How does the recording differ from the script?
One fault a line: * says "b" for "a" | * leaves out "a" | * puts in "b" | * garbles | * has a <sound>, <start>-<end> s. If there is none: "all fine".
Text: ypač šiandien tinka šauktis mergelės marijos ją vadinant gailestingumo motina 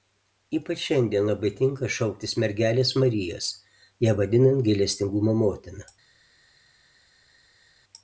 * puts in "labai"